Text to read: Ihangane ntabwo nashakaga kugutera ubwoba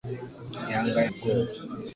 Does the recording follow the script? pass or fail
fail